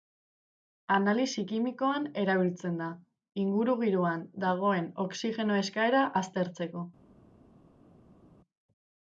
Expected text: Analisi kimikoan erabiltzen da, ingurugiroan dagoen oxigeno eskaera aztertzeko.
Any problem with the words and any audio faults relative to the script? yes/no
no